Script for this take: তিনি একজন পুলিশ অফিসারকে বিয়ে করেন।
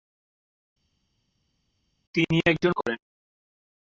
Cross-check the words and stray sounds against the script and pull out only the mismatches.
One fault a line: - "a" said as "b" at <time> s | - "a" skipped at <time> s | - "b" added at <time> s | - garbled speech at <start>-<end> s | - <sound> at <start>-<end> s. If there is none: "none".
- "পুলিশ অফিসারকে বিয়ে" skipped at 2.7 s